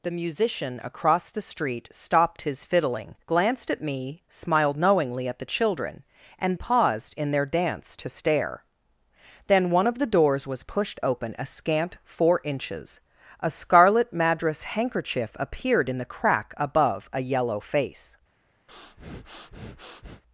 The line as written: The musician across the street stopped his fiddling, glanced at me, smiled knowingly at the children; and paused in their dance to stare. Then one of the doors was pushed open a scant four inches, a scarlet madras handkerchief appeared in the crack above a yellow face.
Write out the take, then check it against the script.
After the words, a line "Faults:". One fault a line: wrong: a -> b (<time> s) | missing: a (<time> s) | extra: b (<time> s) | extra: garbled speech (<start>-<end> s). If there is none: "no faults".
The musician across the street stopped his fiddling, glanced at me, smiled knowingly at the children; and paused in their dance to stare. Then one of the doors was pushed open a scant four inches, a scarlet madras handkerchief appeared in the crack above a yellow face.
Faults:
no faults